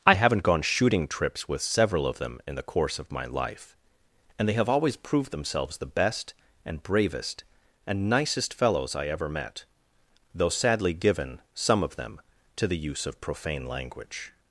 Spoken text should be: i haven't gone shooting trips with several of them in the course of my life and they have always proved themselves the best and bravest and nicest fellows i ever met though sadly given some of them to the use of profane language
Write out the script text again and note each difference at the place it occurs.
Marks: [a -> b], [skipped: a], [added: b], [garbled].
i haven't gone shooting trips with several of them in the course of my life and they have always proved themselves the best and bravest and nicest fellows i ever met though sadly given some of them to the use of profane language